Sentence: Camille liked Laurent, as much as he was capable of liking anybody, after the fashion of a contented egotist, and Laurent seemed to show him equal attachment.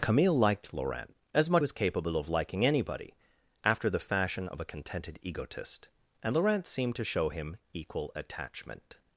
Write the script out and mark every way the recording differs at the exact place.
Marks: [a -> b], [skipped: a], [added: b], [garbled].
Camille liked Laurent, as much [skipped: as he] was capable of liking anybody, after the fashion of a contented egotist, and Laurent seemed to show him equal attachment.